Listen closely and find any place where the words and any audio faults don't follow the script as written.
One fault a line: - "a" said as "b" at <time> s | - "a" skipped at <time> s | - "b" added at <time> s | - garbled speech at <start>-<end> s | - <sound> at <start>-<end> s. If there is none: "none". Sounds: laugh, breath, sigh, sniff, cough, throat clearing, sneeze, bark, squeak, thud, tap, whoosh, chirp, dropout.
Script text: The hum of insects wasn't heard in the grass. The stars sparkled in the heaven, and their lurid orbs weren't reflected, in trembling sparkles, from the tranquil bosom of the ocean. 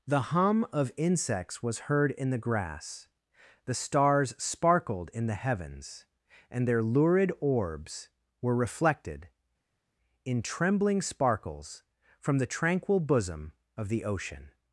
- "wasn't" said as "was" at 1.6 s
- "heaven" said as "heavens" at 5.3 s
- "weren't" said as "were" at 8.4 s